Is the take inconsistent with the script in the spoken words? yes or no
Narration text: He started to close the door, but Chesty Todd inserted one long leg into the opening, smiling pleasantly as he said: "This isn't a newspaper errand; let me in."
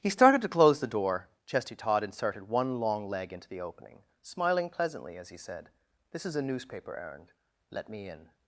yes